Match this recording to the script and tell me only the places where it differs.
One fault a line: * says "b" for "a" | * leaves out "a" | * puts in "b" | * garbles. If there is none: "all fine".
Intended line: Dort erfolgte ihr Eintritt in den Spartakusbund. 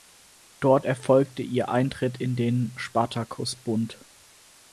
all fine